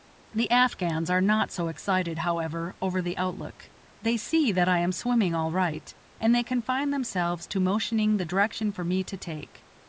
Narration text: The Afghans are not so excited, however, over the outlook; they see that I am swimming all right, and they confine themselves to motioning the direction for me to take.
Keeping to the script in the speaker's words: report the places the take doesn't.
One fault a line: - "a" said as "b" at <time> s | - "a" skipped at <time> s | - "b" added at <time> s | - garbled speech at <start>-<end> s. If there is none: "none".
none